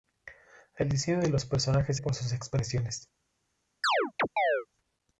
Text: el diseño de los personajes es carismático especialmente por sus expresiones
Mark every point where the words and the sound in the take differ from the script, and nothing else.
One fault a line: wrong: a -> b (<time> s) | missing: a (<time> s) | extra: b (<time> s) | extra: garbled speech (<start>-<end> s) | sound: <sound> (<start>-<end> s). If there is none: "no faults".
missing: es carismático especialmente (2.0 s)
sound: chirp (3.8-4.7 s)